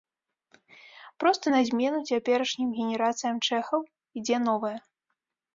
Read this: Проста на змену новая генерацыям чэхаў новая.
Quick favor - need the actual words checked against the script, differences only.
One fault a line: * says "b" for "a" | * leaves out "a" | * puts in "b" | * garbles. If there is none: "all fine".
* says "цяперашнім" for "новая"
* puts in "ідзе"